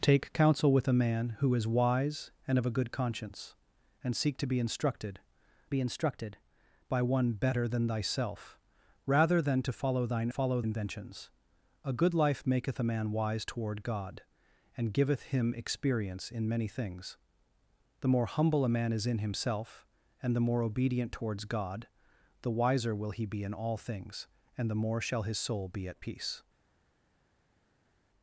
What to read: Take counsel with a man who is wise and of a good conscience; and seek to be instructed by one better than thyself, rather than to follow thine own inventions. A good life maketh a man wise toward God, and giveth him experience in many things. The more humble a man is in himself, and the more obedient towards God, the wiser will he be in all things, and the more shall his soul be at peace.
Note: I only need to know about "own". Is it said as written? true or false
false